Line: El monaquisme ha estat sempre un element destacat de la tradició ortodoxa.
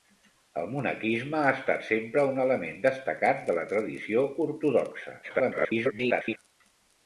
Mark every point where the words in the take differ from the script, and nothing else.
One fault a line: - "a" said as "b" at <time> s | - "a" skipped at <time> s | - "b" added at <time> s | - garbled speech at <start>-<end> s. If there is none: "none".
- garbled speech at 5.2-6.4 s